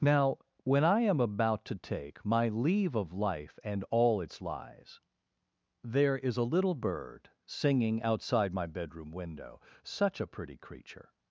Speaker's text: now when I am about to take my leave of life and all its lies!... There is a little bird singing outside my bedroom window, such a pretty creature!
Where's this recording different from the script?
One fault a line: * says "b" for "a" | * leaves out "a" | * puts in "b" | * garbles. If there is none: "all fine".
all fine